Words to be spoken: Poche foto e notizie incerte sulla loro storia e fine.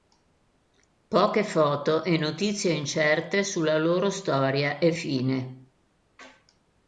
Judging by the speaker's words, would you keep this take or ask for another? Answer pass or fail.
pass